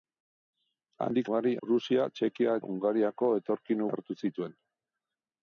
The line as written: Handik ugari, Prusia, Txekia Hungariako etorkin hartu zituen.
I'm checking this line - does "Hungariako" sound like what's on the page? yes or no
yes